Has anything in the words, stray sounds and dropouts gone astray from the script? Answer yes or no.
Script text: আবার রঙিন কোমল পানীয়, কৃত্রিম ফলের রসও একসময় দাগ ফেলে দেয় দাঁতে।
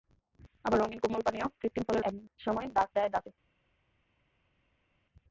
yes